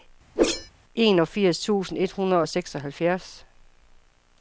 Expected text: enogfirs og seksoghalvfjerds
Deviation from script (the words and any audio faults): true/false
true